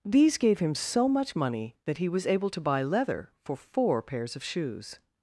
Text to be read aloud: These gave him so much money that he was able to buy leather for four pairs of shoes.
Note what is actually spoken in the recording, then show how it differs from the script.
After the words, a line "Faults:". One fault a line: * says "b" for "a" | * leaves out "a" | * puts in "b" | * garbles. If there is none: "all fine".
These gave him so much money that he was able to buy leather for four pairs of shoes.
Faults:
all fine